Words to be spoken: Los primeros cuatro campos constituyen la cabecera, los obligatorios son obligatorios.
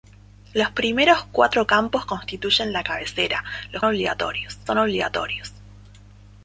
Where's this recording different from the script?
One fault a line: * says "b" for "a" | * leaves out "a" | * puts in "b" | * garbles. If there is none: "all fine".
all fine